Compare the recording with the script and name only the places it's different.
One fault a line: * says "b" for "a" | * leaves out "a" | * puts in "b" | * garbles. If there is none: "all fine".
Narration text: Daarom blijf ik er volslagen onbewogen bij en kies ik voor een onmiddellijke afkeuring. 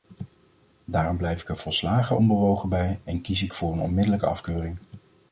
all fine